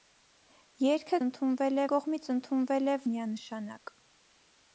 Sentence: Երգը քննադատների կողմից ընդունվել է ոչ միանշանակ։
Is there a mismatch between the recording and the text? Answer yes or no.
yes